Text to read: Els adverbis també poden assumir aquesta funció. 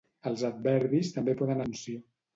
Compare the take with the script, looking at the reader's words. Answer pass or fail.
fail